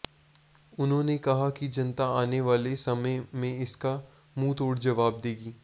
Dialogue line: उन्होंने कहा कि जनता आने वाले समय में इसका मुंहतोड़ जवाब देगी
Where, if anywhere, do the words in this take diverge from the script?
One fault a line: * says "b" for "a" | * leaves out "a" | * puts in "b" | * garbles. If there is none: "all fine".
all fine